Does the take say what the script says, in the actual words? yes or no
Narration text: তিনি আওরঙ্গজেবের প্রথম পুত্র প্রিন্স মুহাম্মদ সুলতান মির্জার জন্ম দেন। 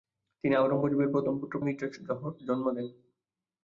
no